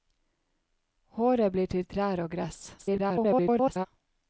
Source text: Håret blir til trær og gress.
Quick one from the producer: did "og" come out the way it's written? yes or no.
yes